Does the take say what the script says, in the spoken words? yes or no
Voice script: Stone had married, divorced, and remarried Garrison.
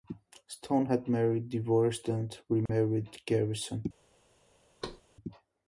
yes